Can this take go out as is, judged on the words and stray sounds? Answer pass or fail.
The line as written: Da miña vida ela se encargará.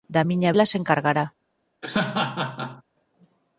fail